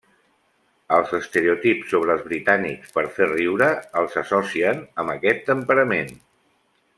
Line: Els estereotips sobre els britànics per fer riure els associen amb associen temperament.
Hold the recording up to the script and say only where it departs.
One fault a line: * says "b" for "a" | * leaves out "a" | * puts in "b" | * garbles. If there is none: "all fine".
* says "aquest" for "associen"